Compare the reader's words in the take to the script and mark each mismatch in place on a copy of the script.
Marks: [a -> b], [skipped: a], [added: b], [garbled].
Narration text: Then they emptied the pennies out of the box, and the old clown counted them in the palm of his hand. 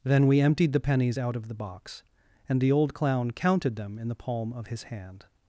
Then [they -> we] emptied the pennies out of the box, and the old clown counted them in the palm of his hand.